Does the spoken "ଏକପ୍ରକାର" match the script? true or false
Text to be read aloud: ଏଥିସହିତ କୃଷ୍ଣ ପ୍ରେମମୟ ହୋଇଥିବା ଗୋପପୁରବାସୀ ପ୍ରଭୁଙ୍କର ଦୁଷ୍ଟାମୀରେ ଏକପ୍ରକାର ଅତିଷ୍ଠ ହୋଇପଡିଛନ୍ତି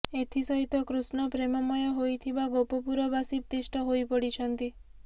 false